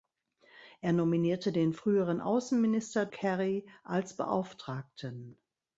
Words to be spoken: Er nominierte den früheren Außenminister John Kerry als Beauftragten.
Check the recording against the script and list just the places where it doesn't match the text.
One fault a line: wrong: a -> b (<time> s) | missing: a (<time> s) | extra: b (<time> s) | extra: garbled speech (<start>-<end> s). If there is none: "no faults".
missing: John (3.1 s)